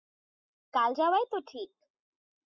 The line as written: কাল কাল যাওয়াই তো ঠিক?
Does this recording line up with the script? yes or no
no